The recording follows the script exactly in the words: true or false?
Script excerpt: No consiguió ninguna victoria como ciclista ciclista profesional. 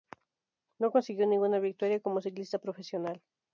false